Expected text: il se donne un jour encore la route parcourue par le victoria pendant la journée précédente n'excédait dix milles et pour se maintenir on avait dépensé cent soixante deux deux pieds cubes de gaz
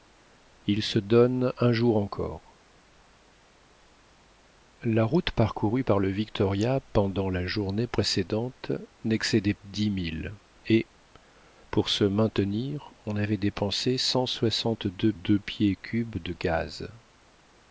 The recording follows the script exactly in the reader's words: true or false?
true